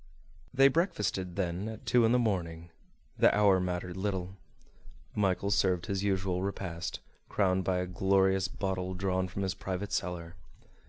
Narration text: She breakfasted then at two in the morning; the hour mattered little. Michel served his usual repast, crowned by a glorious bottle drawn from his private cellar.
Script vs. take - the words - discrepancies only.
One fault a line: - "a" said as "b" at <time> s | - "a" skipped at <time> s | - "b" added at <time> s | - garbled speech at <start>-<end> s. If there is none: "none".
- "She" said as "They" at 0.5 s